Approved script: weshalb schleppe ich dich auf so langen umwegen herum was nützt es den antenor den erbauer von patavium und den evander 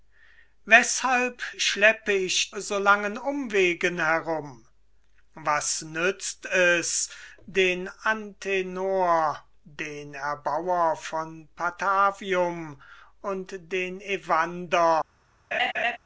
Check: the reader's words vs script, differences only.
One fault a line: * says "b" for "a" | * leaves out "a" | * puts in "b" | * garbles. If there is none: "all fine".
* leaves out "dich auf"